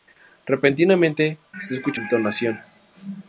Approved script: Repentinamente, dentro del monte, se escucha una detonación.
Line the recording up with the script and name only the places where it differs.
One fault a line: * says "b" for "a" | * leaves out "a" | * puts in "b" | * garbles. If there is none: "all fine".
* leaves out "dentro del monte"
* leaves out "una"